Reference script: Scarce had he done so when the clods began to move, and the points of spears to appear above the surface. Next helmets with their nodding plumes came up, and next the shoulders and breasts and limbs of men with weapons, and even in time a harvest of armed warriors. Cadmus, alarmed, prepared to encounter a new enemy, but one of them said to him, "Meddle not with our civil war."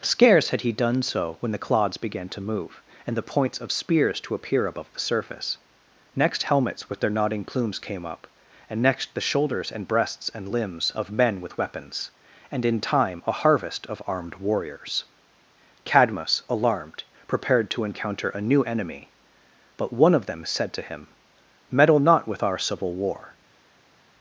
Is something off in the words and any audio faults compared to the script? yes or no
yes